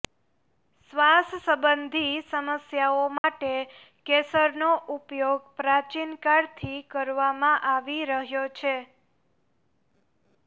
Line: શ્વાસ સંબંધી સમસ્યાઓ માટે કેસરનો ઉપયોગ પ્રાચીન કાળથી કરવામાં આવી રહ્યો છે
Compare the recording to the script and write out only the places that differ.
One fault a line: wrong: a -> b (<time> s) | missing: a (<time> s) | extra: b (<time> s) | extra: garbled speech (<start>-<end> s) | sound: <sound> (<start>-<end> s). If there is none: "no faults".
sound: dropout (3.2-3.2 s)